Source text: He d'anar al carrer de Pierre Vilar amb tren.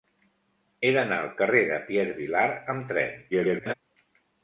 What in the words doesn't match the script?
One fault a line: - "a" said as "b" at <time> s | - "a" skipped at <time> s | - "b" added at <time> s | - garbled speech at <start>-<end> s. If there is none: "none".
- garbled speech at 3.3-3.7 s